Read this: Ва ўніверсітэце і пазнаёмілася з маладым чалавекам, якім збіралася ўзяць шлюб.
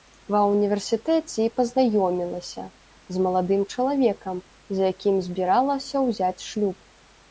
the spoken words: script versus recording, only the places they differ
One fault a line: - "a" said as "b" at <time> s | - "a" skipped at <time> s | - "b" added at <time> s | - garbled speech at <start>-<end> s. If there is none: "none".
- "з" added at 4.8 s